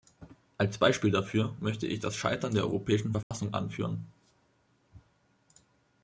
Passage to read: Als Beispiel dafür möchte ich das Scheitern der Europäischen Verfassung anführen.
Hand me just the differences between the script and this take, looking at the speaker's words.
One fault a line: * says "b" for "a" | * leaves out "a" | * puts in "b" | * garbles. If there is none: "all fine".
all fine